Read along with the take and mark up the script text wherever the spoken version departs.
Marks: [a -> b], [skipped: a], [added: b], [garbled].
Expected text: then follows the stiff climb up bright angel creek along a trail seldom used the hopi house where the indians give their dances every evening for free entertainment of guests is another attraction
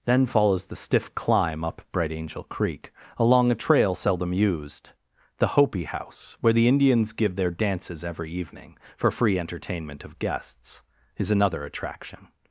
then follows the stiff climb up bright angel creek along a trail seldom used the hopi house where the indians give their dances every evening for free entertainment of guests is another attraction